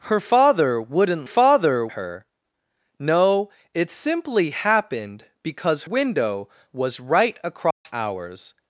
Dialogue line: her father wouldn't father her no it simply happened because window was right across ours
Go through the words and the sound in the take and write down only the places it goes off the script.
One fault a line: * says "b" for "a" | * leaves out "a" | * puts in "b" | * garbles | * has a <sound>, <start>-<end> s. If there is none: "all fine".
* has a dropout, 7.7-7.9 s